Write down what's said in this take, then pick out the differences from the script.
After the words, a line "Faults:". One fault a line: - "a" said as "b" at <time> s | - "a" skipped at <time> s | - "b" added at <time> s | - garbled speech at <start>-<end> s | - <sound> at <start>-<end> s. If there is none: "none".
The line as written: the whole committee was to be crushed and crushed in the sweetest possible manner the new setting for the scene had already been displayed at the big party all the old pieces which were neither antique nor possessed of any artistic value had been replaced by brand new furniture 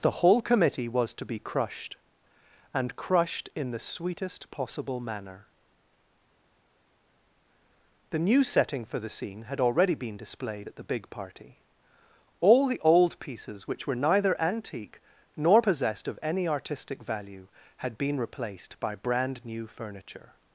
the whole committee was to be crushed and crushed in the sweetest possible manner the new setting for the scene had already been displayed at the big party all the old pieces which were neither antique nor possessed of any artistic value had been replaced by brand new furniture
Faults:
none